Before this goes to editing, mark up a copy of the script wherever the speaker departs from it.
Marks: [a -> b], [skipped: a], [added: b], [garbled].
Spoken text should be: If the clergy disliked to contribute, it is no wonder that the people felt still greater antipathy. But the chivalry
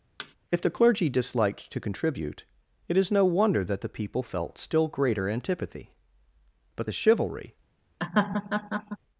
If the clergy disliked to contribute, it is no wonder that the people felt still greater antipathy. But the chivalry